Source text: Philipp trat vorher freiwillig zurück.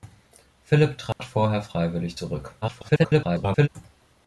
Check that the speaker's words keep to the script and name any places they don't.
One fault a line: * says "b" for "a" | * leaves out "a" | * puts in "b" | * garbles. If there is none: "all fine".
* garbles